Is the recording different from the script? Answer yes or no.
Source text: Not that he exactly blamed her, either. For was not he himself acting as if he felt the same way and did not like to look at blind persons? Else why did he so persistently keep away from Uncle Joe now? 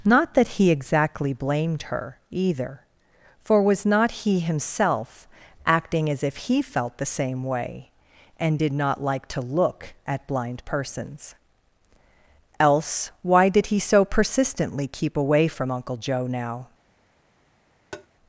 no